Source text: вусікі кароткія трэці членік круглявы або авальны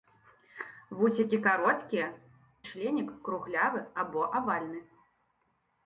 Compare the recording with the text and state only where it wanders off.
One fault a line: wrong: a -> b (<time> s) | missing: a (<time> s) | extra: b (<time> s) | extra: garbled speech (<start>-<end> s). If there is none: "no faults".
missing: трэці (2.1 s)